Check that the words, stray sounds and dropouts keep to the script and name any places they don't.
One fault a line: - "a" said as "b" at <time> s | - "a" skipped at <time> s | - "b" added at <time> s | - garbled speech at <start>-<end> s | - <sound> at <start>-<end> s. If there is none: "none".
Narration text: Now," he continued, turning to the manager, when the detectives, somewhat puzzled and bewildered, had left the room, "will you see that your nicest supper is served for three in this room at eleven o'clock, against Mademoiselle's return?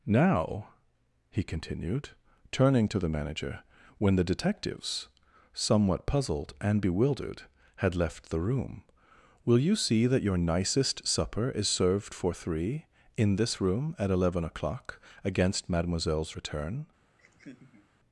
- laugh at 17.2-17.9 s